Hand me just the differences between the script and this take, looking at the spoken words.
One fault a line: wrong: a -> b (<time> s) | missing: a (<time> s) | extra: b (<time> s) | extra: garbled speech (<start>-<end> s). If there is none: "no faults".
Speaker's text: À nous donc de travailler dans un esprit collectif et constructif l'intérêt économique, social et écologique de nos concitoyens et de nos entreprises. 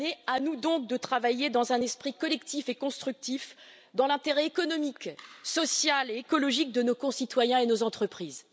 extra: dans (3.9 s)